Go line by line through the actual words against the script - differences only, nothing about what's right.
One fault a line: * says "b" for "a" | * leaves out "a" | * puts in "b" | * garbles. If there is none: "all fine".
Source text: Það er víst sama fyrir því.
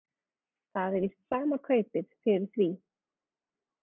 * puts in "kaupið"